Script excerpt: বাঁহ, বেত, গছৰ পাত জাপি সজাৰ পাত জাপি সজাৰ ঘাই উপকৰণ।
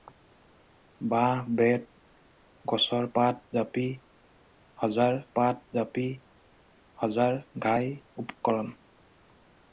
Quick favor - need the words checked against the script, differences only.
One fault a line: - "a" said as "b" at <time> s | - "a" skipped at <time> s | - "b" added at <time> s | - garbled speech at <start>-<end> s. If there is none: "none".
none